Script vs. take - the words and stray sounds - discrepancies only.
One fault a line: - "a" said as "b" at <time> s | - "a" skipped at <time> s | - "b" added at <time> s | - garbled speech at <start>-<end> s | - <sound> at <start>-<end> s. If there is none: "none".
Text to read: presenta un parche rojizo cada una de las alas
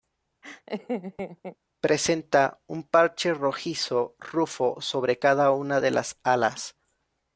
- laugh at 0.4-1.6 s
- "rufo sobre" added at 4.2 s